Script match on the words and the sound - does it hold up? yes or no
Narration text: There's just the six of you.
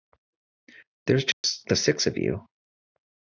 no